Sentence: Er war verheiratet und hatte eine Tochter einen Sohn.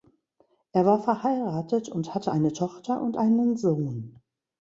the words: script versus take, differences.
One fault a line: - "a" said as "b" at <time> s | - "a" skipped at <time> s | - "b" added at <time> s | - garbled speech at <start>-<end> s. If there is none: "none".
- "und" added at 3.0 s